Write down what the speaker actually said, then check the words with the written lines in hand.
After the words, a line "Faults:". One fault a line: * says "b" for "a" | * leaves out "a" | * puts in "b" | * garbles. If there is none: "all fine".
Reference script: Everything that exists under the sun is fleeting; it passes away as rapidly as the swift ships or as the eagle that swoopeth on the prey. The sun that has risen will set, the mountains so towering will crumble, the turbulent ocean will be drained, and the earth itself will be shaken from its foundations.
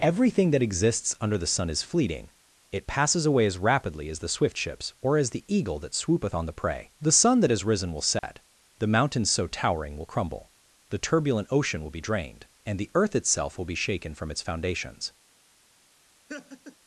Everything that exists under the sun is fleeting; it passes away as rapidly as the swift ships or as the eagle that swoopeth on the prey. The sun that has risen will set, the mountains so towering will crumble, the turbulent ocean will be drained, and the earth itself will be shaken from its foundations.
Faults:
all fine